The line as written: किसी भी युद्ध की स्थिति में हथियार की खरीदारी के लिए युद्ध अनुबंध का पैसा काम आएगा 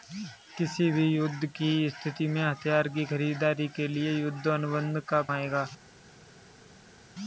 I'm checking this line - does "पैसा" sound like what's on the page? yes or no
no